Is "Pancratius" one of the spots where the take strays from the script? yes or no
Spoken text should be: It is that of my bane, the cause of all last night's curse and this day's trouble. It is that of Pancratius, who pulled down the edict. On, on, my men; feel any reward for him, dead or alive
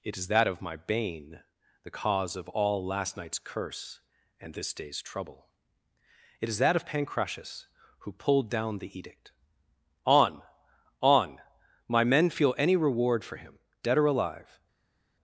no